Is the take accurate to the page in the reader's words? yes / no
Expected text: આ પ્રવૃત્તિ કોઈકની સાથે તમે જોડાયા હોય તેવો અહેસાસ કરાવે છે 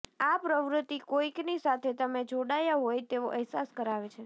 yes